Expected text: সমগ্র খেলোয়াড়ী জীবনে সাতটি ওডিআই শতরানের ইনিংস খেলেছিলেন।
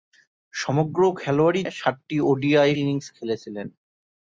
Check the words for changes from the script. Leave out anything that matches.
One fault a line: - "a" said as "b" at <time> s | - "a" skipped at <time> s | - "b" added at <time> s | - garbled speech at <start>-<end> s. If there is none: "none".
- "জীবনে" skipped at 1.6 s
- "শতরানের" skipped at 2.7 s